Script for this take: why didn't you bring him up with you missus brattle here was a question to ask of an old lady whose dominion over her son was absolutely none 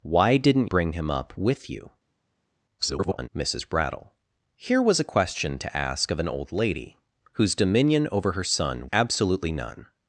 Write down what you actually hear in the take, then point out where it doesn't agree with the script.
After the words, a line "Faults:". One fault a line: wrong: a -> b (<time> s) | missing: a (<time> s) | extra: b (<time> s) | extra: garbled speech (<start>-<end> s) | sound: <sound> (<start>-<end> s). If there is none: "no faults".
why didn't bring him up with you [garbled] missus brattle here was a question to ask of an old lady whose dominion over her son absolutely none
Faults:
missing: you (0.7 s)
extra: garbled speech (2.8-3.3 s)
missing: was (8.9 s)